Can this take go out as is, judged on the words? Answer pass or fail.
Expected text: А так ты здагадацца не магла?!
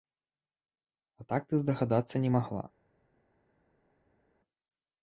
pass